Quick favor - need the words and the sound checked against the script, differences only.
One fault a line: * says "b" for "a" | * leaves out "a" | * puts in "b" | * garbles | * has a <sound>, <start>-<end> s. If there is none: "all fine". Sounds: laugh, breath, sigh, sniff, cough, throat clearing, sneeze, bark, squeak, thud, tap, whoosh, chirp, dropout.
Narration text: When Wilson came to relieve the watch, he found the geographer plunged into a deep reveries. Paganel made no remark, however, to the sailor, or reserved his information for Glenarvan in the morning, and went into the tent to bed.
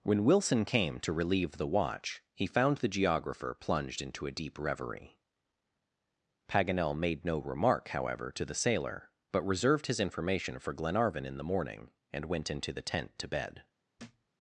* says "reverie" for "reveries"
* says "but" for "or"
* has a thud, 14.0-14.3 s